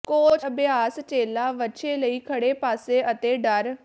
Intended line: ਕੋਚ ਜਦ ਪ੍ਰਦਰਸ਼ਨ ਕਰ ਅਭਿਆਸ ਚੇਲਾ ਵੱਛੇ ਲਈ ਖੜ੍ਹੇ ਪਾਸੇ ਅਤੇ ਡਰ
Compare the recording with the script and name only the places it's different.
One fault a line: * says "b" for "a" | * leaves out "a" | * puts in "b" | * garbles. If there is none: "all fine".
* leaves out "ਜਦ ਪ੍ਰਦਰਸ਼ਨ ਕਰ"